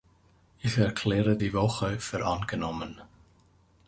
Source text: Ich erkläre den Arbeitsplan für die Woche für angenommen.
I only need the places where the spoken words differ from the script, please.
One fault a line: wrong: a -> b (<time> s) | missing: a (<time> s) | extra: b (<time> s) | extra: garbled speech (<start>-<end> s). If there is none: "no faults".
missing: den Arbeitsplan für (1.4 s)